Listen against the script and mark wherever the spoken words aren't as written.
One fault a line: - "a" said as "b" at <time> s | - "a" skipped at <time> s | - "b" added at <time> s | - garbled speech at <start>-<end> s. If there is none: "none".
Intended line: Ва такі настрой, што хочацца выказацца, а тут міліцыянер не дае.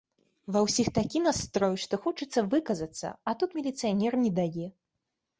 - "ўсіх" added at 0.7 s